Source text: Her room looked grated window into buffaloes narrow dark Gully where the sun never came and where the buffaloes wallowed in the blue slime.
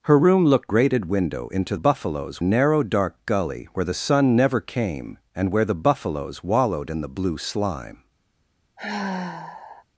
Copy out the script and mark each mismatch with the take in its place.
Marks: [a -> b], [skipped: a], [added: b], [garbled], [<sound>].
Her room looked grated window into buffaloes narrow dark Gully where the sun never came and where the buffaloes wallowed in the blue slime. [sigh]